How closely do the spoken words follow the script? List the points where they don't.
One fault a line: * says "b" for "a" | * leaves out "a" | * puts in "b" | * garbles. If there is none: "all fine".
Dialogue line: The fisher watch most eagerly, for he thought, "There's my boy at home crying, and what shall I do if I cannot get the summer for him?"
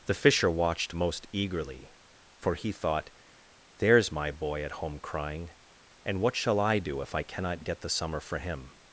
* says "watched" for "watch"